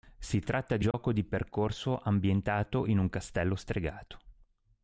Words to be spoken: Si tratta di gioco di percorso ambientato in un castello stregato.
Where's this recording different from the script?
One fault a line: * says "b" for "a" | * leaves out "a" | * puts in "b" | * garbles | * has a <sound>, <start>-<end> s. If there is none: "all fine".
* has a dropout, 0.9-0.9 s